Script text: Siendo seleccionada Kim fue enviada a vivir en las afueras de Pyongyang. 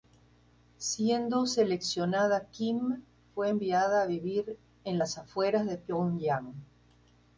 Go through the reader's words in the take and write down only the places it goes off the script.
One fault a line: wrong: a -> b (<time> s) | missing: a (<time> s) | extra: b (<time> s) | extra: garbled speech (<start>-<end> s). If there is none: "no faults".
no faults